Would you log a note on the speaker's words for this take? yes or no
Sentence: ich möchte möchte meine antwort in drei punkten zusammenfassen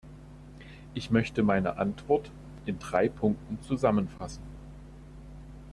yes